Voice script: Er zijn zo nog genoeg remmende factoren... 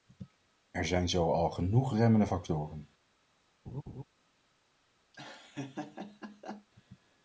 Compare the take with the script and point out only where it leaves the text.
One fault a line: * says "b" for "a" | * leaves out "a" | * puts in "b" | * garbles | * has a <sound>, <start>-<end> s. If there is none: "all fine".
* says "al" for "nog"
* has a laugh, 3.7-4.0 s
* has a laugh, 5.1-6.7 s